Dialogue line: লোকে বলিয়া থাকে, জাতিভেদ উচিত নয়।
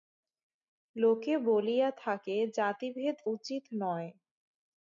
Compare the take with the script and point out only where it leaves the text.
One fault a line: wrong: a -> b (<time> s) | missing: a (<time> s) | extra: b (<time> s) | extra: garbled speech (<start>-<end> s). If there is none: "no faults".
no faults